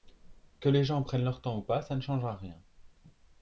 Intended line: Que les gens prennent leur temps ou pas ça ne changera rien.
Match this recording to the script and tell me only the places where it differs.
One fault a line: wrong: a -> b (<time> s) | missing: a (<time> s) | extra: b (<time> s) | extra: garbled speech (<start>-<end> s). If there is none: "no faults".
no faults